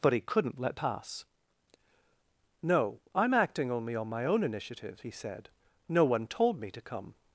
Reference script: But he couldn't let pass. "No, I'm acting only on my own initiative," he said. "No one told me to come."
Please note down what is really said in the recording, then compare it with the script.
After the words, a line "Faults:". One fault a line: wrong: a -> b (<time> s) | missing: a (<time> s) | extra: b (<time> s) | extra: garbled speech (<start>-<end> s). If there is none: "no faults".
But he couldn't let pass. "No, I'm acting only on my own initiative," he said. "No one told me to come."
Faults:
no faults